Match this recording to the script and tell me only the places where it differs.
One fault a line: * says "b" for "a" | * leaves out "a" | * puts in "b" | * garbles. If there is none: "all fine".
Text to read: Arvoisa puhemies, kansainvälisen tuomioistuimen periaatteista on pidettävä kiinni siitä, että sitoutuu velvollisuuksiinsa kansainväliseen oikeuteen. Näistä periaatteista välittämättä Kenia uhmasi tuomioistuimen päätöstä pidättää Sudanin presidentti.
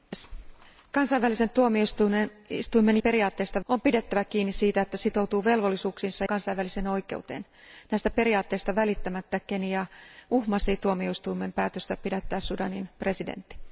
all fine